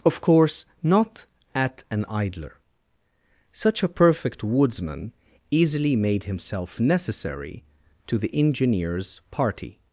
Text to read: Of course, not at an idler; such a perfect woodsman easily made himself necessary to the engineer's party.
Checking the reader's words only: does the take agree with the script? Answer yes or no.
yes